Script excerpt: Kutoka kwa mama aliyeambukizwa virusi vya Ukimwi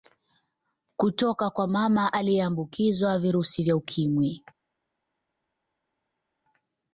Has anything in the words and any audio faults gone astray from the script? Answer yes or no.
no